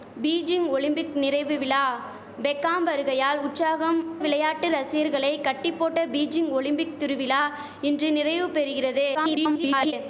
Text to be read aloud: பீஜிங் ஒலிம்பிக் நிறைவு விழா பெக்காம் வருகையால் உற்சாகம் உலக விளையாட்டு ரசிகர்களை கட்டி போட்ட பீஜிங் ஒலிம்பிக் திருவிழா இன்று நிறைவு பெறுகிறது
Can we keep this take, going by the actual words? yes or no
no